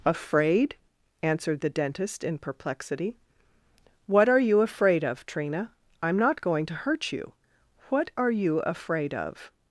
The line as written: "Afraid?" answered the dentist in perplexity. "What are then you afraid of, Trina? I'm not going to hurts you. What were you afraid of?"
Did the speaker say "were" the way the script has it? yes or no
no